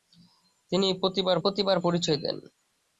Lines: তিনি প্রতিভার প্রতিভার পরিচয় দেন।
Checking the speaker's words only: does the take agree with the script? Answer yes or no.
yes